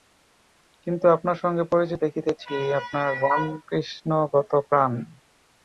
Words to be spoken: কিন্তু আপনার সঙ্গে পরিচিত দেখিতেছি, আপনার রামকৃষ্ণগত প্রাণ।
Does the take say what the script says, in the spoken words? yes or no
yes